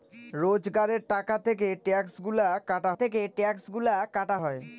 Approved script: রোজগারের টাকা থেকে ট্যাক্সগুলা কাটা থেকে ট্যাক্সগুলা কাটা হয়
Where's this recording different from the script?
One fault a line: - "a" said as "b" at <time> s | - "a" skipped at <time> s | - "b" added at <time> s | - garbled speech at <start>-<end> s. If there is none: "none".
none